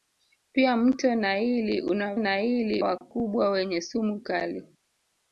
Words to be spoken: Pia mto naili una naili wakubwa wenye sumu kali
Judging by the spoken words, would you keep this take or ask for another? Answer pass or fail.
pass